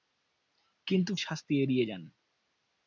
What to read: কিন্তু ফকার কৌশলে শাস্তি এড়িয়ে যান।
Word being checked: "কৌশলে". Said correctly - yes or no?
no